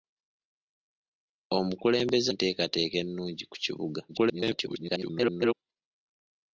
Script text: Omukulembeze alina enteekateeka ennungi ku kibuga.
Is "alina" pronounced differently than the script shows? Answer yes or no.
yes